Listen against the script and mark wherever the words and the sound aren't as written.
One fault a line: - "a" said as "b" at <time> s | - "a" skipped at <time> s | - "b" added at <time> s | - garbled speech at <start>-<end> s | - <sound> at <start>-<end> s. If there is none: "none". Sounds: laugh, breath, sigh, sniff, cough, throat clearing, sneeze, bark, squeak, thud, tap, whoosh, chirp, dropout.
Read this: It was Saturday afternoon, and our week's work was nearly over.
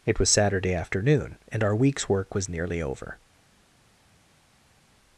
none